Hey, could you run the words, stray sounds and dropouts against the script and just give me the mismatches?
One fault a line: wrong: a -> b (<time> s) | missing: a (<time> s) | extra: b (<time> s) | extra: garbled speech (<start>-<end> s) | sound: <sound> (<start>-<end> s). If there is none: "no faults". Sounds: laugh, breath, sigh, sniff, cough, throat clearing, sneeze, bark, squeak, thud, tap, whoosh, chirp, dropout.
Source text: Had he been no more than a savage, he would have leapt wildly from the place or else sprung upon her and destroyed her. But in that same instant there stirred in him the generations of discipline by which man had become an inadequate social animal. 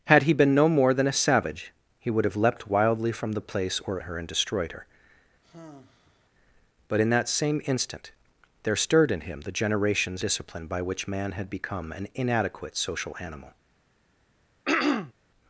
missing: else sprung upon (4.0 s)
sound: sigh (5.4-6.3 s)
missing: of (10.2 s)
sound: throat clearing (14.7-15.1 s)